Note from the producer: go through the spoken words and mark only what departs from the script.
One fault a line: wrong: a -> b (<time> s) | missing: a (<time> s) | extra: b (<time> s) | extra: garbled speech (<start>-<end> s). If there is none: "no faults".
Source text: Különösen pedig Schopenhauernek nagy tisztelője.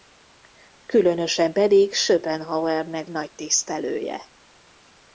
no faults